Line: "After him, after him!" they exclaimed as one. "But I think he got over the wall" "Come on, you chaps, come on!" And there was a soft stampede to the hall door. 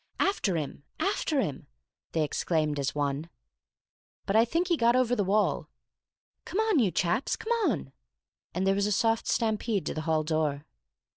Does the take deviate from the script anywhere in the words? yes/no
no